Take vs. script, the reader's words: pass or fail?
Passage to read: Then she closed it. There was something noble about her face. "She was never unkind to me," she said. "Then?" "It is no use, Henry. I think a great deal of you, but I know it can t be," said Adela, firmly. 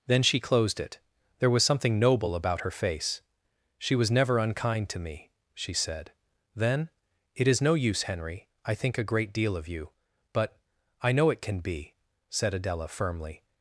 fail